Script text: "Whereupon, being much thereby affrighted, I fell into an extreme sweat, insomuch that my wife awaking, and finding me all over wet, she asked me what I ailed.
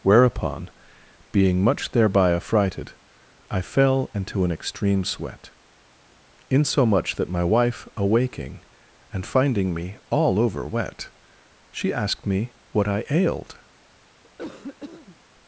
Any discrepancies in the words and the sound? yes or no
yes